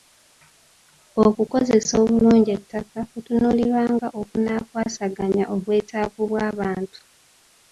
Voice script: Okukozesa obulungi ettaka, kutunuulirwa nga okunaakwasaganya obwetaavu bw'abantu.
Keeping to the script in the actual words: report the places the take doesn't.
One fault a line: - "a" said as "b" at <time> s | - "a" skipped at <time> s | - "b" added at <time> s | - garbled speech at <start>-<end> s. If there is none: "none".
none